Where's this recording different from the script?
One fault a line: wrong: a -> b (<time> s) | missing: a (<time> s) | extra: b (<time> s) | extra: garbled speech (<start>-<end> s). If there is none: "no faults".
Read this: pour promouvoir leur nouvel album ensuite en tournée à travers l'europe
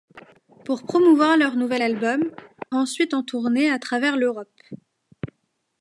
no faults